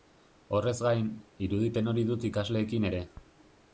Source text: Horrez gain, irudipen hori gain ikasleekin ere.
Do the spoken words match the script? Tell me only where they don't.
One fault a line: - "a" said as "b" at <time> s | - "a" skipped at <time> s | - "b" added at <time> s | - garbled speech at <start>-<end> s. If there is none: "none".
- "gain" said as "dut" at 2.1 s